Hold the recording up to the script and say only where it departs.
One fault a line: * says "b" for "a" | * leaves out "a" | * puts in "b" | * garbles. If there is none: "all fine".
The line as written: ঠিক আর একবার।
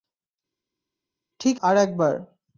all fine